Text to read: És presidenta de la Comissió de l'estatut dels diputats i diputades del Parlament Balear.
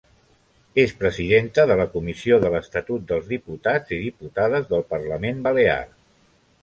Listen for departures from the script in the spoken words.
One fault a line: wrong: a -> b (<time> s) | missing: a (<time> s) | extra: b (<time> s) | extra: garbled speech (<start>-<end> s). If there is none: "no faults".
no faults